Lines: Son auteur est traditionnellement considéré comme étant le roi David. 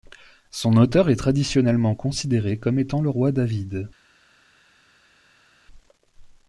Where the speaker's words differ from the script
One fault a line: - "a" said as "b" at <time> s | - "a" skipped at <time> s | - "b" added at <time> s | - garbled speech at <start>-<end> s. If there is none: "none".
none